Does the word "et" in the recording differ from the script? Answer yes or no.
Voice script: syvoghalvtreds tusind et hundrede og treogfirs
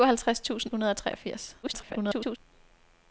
yes